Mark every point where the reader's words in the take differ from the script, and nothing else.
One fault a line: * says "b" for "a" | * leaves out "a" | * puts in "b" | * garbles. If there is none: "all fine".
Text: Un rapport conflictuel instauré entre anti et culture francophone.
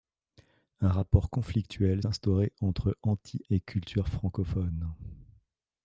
all fine